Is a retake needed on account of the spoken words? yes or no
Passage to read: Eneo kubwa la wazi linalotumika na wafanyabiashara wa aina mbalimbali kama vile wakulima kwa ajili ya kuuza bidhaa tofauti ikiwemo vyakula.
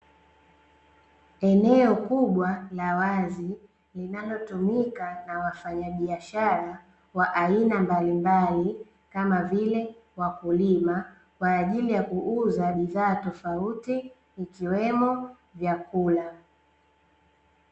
no